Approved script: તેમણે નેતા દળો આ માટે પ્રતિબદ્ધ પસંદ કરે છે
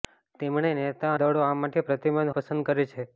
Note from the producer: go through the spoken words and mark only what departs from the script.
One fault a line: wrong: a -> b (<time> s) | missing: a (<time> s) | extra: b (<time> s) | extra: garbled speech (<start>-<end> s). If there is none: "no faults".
no faults